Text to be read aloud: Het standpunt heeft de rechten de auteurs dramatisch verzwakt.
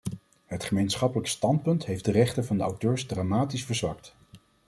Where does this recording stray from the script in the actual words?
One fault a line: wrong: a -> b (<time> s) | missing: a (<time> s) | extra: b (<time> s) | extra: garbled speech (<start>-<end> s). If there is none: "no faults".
extra: gemeenschappelijk (0.6 s)
extra: van (2.5 s)